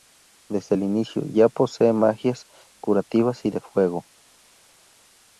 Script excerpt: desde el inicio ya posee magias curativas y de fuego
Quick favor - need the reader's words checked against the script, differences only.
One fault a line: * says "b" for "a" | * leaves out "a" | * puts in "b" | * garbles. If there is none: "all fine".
all fine